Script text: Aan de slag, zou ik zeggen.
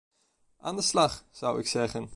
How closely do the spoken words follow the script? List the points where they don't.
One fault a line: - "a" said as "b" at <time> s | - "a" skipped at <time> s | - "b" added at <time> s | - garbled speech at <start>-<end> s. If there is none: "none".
none